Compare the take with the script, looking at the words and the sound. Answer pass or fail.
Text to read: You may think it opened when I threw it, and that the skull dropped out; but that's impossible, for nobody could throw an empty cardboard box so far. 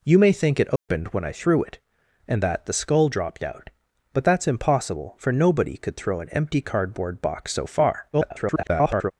fail